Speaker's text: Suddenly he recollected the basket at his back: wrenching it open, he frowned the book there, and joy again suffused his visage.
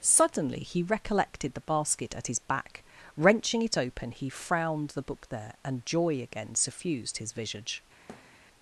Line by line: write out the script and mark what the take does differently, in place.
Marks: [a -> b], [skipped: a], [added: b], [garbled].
Suddenly he recollected the basket at his back: wrenching it open, he frowned the book there, and joy again suffused his visage.